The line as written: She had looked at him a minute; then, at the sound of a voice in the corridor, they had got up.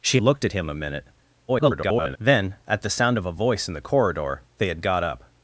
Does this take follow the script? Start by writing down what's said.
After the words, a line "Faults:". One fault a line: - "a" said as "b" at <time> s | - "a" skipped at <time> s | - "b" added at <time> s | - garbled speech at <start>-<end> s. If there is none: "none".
She looked at him a minute; [garbled] then, at the sound of a voice in the corridor, they had got up.
Faults:
- "had" skipped at 0.2 s
- garbled speech at 1.5-2.2 s